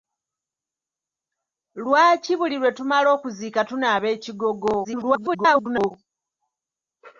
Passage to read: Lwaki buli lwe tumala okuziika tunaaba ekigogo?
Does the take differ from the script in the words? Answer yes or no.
yes